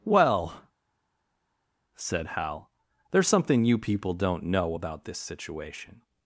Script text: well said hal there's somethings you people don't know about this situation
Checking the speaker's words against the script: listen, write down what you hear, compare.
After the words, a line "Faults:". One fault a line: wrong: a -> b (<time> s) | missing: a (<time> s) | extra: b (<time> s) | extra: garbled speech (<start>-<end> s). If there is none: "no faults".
well said hal there's something you people don't know about this situation
Faults:
wrong: somethings -> something (3.3 s)